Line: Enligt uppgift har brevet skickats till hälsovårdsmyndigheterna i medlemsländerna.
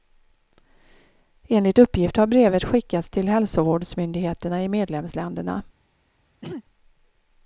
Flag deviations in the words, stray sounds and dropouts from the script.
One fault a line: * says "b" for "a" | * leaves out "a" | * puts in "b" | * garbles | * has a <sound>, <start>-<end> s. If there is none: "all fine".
* has a throat clearing, 6.4-6.6 s